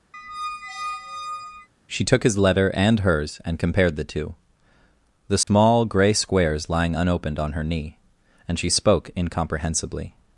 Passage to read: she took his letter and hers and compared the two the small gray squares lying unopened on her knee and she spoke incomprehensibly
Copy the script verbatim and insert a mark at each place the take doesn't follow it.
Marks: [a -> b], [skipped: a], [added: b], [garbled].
she took his letter and hers and compared the two the small gray squares lying unopened on her knee and she spoke incomprehensibly